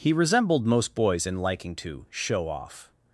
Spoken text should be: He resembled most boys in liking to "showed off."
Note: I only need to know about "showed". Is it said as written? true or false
false